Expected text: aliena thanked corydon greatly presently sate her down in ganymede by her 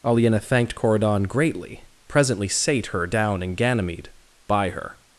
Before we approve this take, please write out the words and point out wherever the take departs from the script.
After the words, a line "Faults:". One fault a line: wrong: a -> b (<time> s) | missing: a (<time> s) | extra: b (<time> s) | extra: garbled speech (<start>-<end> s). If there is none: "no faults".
aliena thanked corydon greatly presently sate her down in ganymede by her
Faults:
no faults